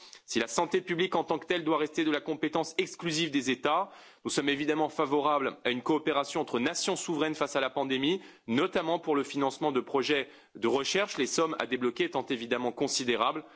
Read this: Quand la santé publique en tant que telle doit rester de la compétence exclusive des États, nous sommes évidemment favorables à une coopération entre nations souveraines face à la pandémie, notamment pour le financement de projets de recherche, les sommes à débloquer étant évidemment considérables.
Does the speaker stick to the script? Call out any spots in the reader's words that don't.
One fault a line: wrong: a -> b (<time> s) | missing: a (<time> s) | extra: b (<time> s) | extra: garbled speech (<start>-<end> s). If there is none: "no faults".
wrong: Quand -> Si (0.2 s)